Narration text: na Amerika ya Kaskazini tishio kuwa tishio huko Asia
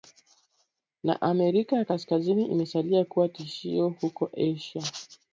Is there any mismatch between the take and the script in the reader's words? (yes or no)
yes